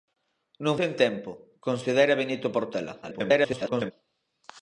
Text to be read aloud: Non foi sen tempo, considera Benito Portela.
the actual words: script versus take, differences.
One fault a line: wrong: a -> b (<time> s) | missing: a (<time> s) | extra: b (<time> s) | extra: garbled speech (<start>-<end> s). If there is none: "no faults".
missing: foi (0.8 s)
extra: garbled speech (3.0-3.9 s)